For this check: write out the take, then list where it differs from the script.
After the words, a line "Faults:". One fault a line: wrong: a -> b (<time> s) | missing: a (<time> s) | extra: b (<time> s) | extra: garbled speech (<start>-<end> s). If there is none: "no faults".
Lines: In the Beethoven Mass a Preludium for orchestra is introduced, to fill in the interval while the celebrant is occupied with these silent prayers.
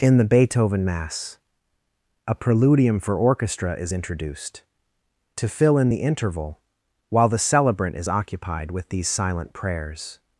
In the Beethoven Mass a Preludium for orchestra is introduced, to fill in the interval while the celebrant is occupied with these silent prayers.
Faults:
no faults